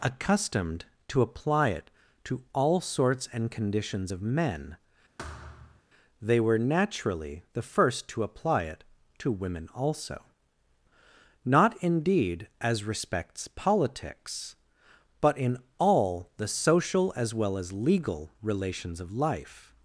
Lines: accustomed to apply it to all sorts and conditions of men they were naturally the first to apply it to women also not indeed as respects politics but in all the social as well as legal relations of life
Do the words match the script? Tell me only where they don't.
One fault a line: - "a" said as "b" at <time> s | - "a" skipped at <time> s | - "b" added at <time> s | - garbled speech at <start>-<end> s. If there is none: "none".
none